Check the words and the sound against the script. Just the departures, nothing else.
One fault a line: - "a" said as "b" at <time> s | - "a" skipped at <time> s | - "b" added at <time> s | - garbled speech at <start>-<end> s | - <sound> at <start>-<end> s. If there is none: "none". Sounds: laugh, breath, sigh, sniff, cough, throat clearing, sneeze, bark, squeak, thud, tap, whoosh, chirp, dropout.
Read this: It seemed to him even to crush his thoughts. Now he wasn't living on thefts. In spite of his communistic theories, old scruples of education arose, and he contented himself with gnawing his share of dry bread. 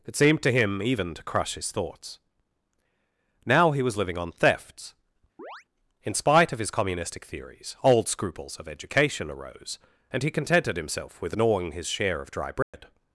- "wasn't" said as "was" at 3.8 s
- chirp at 5.4-5.6 s
- dropout at 12.6-12.7 s